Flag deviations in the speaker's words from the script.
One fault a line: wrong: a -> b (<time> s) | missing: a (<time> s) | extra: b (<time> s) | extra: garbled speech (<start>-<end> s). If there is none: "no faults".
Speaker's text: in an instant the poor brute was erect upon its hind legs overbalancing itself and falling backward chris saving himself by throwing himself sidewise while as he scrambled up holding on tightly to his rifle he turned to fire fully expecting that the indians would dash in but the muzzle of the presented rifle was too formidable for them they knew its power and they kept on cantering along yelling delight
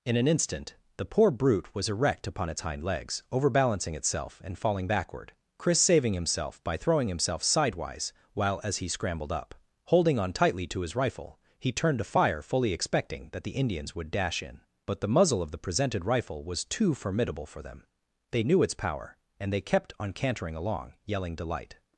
no faults